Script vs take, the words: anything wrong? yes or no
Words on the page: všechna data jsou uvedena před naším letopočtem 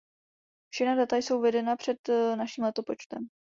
no